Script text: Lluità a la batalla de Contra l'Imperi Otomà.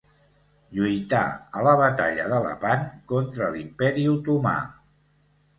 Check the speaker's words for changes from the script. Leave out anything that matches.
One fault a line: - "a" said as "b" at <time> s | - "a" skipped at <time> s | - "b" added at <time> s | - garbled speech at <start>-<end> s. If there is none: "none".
- "Lepant" added at 2.5 s